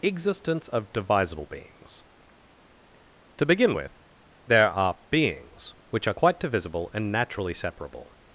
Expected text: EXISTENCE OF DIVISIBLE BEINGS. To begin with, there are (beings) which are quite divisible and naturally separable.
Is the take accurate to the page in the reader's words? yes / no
yes